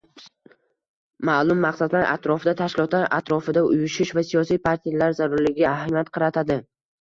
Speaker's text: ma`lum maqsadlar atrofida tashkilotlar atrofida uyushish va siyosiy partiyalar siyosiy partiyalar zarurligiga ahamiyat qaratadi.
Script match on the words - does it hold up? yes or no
no